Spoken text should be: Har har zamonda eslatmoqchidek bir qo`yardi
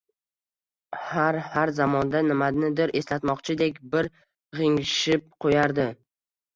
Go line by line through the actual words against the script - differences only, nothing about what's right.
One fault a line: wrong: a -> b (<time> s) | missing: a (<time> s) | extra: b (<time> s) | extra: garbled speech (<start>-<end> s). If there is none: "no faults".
extra: nimanidir (2.3 s)
extra: g`ingshib (4.6 s)